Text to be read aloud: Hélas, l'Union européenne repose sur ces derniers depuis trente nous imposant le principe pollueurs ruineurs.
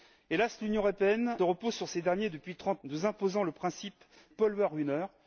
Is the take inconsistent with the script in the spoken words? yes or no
no